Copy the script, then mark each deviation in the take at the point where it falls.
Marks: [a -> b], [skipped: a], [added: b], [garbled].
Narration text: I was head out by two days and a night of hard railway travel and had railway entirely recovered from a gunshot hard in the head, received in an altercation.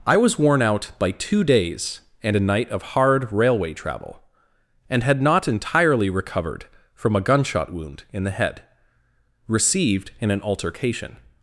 I was [head -> worn] out by two days and a night of hard railway travel and had [railway -> not] entirely recovered from a gunshot [hard -> wound] in the head, received in an altercation.